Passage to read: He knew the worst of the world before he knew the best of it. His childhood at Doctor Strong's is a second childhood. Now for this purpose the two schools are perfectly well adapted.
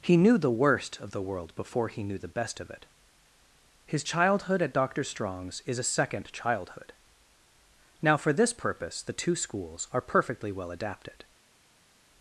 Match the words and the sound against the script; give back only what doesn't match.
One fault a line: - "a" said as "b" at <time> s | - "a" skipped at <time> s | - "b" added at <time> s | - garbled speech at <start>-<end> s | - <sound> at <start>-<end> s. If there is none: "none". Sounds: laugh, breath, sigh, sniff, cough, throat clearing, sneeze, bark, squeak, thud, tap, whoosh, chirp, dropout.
none